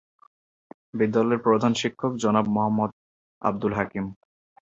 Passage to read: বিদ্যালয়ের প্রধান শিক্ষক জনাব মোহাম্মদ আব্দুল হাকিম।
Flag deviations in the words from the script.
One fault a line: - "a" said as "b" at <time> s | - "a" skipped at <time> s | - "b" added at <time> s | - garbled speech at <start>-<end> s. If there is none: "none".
none